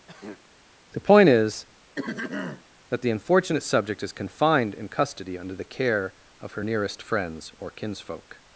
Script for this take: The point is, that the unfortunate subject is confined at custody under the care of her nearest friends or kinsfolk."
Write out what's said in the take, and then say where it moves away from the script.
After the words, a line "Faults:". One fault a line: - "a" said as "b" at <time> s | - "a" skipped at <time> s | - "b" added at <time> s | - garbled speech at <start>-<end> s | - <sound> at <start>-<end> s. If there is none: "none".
The point is, that the unfortunate subject is confined in custody under the care of her nearest friends or kinsfolk."
Faults:
- throat clearing at 0.1-0.5 s
- throat clearing at 2.0-2.6 s
- "at" said as "in" at 4.7 s